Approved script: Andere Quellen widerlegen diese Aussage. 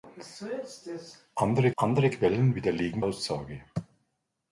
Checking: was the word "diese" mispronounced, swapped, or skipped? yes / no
yes